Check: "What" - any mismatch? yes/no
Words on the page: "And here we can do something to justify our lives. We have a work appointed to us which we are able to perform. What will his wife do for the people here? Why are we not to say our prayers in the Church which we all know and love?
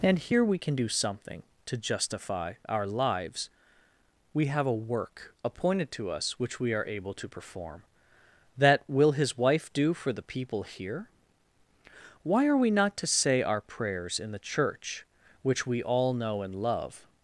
yes